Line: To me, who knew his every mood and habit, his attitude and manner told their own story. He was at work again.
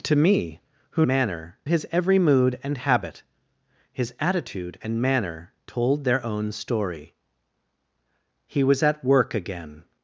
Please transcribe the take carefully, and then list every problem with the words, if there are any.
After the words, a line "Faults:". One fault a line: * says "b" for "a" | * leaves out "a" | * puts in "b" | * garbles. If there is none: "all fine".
To me, who manner his every mood and habit, his attitude and manner told their own story. He was at work again.
Faults:
* says "manner" for "knew"